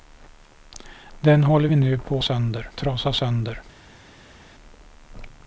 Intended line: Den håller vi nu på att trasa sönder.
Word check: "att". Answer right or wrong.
wrong